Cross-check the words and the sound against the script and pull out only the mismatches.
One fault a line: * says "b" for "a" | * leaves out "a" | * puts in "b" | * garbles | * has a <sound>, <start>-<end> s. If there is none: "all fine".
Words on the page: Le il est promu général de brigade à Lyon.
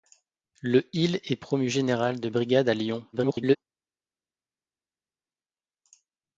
* garbles